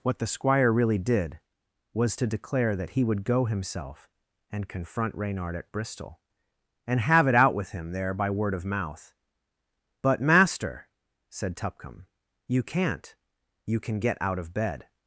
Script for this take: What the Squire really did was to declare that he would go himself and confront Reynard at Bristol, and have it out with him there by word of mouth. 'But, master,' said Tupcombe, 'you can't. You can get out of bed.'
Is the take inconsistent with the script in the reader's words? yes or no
no